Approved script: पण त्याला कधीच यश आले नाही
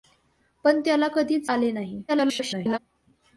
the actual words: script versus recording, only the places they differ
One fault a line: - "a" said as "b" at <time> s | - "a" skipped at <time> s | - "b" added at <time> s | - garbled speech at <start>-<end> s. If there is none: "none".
- "यश" skipped at 1.5 s
- garbled speech at 2.1-2.8 s